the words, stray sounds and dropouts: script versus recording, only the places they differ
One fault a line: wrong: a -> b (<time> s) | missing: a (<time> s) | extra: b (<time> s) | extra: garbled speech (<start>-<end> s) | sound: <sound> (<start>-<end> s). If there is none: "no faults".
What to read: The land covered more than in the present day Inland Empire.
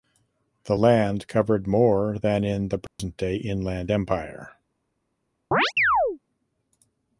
sound: dropout (2.9-3.0 s)
sound: chirp (5.5-6.2 s)